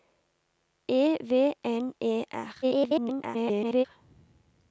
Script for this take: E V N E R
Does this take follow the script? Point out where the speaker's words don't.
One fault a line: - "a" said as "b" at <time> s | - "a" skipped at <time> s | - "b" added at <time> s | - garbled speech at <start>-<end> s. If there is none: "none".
- garbled speech at 2.6-3.8 s